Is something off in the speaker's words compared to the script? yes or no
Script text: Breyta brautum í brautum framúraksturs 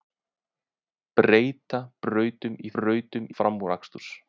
no